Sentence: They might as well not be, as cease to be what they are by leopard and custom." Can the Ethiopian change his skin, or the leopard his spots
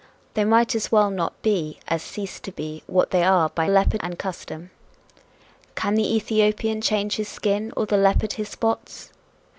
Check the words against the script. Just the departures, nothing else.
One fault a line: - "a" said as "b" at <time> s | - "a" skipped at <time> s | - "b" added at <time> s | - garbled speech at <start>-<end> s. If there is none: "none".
none